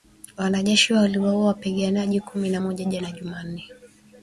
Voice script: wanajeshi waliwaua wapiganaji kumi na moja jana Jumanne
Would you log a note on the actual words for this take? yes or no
no